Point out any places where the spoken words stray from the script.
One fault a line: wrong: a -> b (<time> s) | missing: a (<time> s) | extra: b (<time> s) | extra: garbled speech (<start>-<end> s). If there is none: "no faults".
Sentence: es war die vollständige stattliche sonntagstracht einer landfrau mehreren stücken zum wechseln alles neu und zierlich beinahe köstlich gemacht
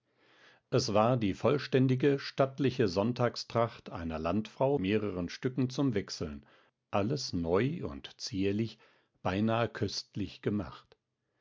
no faults